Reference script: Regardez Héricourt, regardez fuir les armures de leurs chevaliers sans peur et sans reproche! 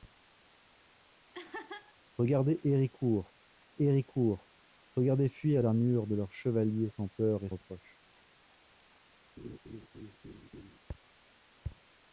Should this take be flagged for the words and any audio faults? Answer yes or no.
yes